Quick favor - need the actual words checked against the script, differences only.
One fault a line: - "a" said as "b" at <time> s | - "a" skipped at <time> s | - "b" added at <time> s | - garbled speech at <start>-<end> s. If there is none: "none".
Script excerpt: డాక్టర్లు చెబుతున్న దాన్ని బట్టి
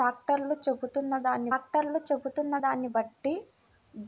- "డాక్టర్లు చెబుతున్న దాన్ని" added at 1.5 s